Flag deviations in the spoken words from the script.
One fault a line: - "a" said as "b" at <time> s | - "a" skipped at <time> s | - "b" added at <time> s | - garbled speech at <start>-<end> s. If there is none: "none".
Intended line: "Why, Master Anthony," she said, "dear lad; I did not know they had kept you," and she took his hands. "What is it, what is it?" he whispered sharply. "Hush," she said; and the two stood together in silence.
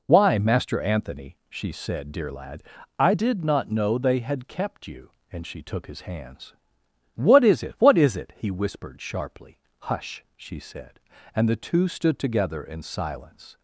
none